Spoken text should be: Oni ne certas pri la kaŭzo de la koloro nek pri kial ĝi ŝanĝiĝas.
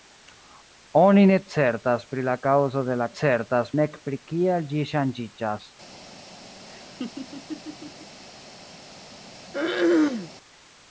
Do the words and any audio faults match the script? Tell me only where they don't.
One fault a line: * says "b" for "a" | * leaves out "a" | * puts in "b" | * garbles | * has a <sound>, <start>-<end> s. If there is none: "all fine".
* says "certas" for "koloro"
* has a laugh, 6.7-8.2 s
* has a throat clearing, 9.5-10.3 s